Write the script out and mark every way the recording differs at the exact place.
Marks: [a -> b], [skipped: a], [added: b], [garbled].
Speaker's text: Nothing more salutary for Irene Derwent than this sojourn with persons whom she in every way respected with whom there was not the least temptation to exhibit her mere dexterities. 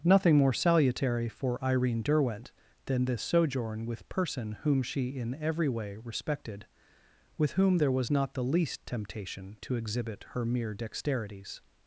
Nothing more salutary for Irene Derwent than this sojourn with [persons -> person] whom she in every way respected with whom there was not the least temptation to exhibit her mere dexterities.